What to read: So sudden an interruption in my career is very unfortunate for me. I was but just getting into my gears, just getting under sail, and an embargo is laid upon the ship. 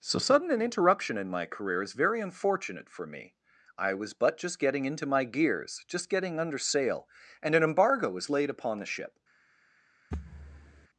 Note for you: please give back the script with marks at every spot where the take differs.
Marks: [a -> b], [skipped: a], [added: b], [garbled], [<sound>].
So sudden an interruption in my career is very unfortunate for me. I was but just getting into my gears, just getting under sail, and an embargo [is -> was] laid upon the ship. [thud]